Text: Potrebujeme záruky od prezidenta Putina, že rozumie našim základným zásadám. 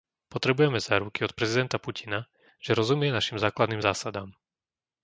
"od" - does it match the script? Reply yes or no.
yes